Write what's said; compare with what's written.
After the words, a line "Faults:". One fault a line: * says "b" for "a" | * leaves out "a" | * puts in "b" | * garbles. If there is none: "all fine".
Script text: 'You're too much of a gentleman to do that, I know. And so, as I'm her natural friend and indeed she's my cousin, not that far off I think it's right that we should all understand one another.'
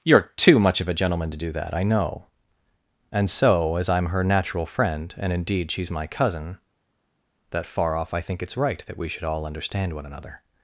'You're too much of a gentleman to do that, I know. And so, as I'm her natural friend and indeed she's my cousin, that far off I think it's right that we should all understand one another.'
Faults:
* leaves out "not"